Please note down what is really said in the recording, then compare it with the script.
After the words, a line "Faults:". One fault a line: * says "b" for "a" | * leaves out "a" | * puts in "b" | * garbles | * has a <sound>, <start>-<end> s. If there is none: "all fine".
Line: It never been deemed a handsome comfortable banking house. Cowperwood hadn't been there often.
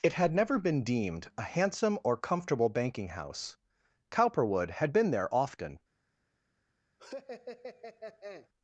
It had never been deemed a handsome or comfortable banking house. Cowperwood had been there often.
Faults:
* puts in "had"
* puts in "or"
* says "had" for "hadn't"
* has a laugh, 7.0-8.5 s